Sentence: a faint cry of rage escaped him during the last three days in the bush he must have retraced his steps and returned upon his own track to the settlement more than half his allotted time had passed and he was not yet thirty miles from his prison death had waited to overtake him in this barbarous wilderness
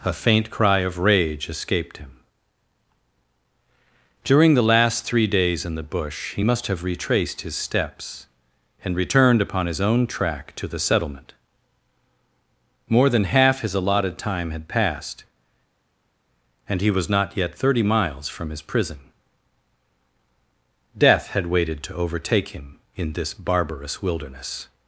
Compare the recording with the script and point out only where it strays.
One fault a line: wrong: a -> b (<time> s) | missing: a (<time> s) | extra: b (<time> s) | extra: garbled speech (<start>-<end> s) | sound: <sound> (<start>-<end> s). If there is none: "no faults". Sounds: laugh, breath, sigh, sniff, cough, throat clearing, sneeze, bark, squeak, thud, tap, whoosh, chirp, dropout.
no faults